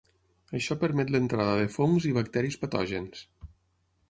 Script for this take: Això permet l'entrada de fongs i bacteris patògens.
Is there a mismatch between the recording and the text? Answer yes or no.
no